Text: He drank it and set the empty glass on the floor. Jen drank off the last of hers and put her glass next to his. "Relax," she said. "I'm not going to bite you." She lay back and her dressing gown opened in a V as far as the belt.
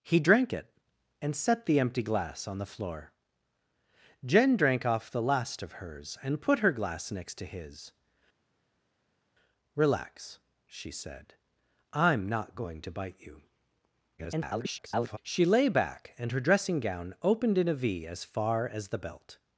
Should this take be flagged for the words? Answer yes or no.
yes